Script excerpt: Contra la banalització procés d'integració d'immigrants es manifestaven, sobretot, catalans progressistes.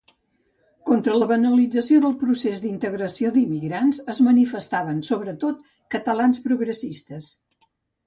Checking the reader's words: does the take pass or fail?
fail